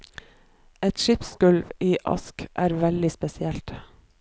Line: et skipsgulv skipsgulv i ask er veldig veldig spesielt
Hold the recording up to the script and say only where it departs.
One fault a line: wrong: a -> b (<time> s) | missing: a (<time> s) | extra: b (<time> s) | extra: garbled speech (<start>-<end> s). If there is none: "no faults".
missing: skipsgulv (1.7 s)
missing: veldig (3.1 s)